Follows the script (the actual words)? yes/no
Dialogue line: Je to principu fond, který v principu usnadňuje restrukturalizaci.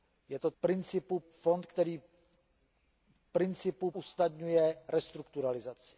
yes